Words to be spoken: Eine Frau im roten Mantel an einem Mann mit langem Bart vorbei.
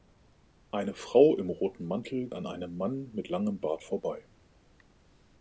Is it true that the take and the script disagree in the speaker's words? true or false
false